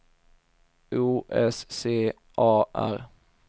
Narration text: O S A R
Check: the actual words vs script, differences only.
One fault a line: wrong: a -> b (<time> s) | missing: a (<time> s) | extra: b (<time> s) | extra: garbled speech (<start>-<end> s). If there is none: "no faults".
extra: C (1.7 s)